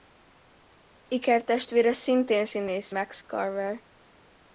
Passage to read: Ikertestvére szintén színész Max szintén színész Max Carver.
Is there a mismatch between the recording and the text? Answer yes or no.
yes